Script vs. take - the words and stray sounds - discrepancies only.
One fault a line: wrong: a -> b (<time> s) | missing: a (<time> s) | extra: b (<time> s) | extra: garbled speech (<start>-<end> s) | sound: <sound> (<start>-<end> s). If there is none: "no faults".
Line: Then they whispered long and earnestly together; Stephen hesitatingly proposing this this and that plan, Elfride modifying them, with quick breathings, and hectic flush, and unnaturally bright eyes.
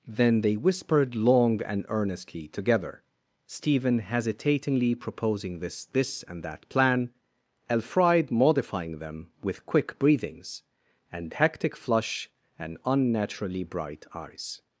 no faults